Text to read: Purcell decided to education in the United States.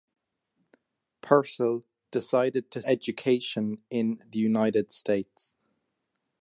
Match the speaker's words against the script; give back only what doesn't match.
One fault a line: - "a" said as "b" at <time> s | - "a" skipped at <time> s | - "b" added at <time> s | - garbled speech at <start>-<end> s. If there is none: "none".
none